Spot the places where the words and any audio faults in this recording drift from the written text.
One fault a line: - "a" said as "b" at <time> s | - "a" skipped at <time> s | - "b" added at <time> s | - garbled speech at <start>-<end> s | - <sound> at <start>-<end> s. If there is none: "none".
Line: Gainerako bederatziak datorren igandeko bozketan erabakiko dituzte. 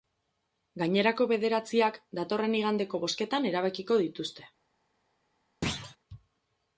- thud at 5.6-6.0 s